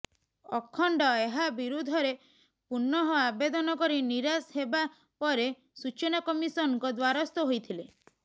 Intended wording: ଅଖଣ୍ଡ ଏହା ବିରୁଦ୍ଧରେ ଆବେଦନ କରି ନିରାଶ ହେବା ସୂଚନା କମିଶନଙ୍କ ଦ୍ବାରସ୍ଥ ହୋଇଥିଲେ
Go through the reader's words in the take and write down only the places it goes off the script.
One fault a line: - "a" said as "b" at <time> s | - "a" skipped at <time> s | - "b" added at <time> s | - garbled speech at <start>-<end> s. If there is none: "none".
- "ପୁନଃ" added at 2.7 s
- "ପରେ" added at 5.2 s